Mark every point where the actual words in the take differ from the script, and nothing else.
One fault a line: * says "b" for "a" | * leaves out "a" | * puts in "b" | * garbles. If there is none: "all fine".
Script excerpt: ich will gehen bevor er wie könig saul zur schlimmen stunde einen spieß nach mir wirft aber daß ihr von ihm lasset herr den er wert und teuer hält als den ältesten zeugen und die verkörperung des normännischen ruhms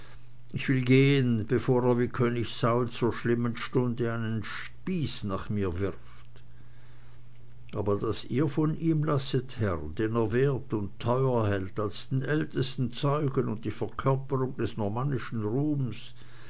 all fine